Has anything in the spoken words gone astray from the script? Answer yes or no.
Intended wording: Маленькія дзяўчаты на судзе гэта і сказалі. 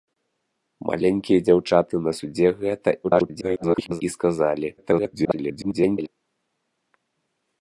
yes